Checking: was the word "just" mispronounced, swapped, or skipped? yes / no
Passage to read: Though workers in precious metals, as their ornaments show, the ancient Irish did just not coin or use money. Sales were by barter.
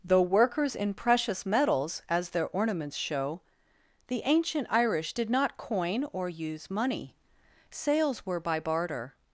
yes